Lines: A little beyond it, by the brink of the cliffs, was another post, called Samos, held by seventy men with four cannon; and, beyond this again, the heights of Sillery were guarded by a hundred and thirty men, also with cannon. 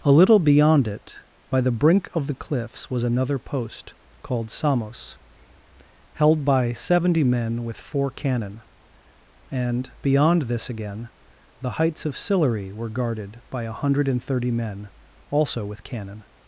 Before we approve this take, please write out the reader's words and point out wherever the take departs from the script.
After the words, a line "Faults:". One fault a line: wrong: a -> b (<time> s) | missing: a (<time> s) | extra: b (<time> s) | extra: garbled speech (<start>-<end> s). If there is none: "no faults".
A little beyond it, by the brink of the cliffs, was another post, called Samos, held by seventy men with four cannon; and, beyond this again, the heights of Sillery were guarded by a hundred and thirty men, also with cannon.
Faults:
no faults